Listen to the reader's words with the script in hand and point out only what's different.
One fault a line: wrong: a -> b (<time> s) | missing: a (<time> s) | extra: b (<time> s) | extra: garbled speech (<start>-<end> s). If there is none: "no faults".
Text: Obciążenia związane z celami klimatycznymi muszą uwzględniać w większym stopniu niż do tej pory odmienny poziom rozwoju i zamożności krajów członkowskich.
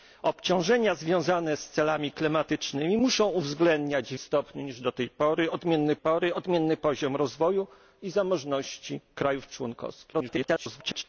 missing: większym (4.2 s)
extra: pory odmienny (6.0 s)
extra: garbled speech (10.1-11.0 s)